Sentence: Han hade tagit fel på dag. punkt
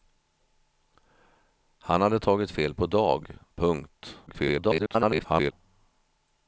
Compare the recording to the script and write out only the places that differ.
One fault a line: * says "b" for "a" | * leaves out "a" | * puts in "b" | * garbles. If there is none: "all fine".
* garbles